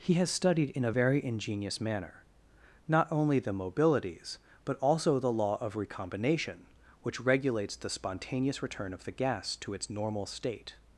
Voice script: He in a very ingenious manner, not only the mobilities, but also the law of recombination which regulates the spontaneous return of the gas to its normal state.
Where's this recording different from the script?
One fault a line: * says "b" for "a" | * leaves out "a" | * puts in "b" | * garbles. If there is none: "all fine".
* puts in "has studied"